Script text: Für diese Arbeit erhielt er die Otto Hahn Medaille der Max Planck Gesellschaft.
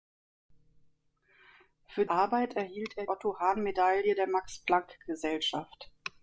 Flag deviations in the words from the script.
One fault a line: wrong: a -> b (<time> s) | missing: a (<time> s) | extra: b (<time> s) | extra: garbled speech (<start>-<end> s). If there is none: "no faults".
missing: diese (2.1 s)
missing: die (3.0 s)